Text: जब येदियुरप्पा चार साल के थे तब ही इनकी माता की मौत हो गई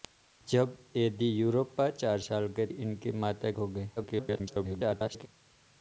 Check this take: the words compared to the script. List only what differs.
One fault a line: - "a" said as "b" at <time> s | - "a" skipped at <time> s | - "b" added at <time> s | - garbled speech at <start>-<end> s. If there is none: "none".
- "थे तब ही" skipped at 2.7 s
- "की मौत" skipped at 3.5 s
- garbled speech at 4.0-5.3 s